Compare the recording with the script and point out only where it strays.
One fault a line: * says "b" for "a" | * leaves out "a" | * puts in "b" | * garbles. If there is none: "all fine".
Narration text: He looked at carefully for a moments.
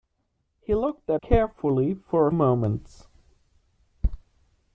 all fine